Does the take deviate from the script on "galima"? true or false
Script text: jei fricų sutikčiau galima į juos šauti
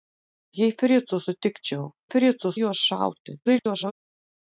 true